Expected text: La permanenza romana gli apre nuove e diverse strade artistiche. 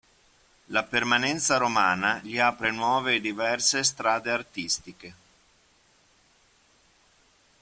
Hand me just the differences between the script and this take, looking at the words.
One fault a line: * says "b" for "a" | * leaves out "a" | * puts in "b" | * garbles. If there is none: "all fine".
all fine